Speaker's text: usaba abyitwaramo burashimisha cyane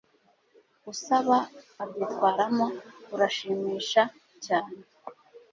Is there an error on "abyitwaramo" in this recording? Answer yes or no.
no